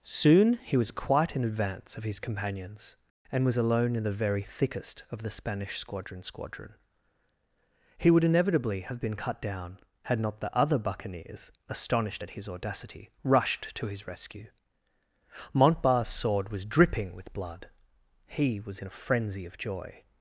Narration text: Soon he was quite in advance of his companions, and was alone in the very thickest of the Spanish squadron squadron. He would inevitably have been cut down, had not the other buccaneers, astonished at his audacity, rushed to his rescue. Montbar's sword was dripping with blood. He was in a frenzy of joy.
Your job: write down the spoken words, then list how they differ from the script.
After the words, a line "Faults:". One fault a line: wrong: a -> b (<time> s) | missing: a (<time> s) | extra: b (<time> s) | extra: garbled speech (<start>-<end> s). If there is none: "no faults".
Soon he was quite in advance of his companions, and was alone in the very thickest of the Spanish squadron squadron. He would inevitably have been cut down, had not the other buccaneers, astonished at his audacity, rushed to his rescue. Montbar's sword was dripping with blood. He was in a frenzy of joy.
Faults:
no faults